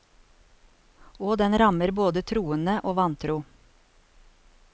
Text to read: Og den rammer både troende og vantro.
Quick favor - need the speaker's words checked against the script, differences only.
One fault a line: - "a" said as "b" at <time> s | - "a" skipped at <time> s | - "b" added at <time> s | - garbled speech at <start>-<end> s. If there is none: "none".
none